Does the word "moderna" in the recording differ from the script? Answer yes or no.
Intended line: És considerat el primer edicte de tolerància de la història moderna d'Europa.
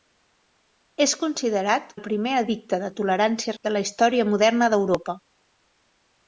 no